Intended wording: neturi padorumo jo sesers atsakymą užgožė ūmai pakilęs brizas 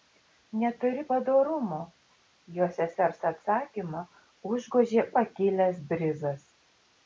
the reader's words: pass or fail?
fail